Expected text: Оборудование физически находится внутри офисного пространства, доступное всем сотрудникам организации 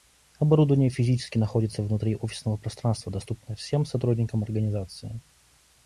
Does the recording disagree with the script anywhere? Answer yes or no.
no